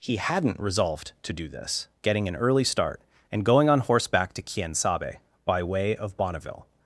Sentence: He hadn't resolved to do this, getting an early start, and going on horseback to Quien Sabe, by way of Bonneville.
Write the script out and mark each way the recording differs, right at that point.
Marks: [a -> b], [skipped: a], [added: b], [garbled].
He hadn't resolved to do this, getting an early start, and going on horseback to Quien Sabe, by way of Bonneville.